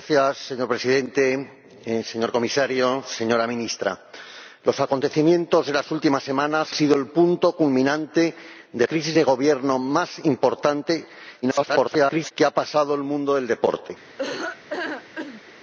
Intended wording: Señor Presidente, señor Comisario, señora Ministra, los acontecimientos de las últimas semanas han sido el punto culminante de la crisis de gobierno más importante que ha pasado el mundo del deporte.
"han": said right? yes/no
no